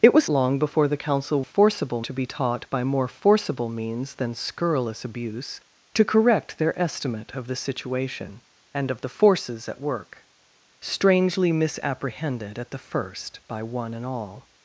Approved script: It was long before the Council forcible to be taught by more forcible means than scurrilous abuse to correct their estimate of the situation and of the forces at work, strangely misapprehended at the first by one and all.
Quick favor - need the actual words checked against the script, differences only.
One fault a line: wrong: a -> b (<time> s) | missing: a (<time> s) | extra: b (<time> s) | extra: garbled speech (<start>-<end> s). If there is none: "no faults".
no faults